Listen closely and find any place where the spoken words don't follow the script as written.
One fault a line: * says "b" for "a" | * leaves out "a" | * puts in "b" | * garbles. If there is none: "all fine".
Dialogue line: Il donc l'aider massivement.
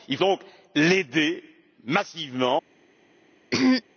all fine